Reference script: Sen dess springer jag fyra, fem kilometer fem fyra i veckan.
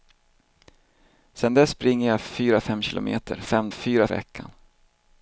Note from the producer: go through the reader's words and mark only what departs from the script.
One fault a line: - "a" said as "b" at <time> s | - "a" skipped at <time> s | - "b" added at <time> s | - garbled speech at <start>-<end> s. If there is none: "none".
none